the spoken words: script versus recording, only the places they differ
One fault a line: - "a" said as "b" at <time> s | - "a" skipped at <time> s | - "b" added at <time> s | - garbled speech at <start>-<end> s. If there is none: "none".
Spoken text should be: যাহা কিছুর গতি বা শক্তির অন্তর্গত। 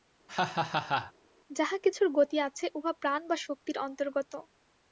- "আছে উহা প্রাণ" added at 2.4 s